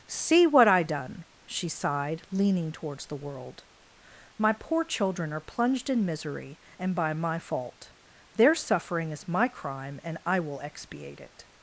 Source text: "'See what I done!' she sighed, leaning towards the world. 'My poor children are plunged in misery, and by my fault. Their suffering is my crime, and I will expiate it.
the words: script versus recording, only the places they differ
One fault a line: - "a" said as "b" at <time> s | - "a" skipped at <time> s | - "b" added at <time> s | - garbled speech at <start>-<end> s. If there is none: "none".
none